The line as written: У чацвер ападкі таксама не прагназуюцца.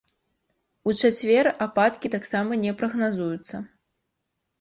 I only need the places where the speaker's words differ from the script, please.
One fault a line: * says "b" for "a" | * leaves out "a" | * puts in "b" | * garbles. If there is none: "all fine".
all fine